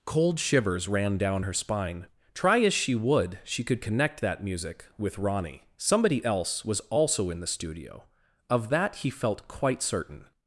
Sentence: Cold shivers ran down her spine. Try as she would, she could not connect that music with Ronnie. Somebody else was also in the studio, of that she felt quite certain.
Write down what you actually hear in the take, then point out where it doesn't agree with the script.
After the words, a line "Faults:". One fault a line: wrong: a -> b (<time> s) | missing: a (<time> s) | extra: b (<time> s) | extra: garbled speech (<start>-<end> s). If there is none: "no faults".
Cold shivers ran down her spine. Try as she would, she could connect that music with Ronnie. Somebody else was also in the studio, of that he felt quite certain.
Faults:
missing: not (3.8 s)
wrong: she -> he (9.0 s)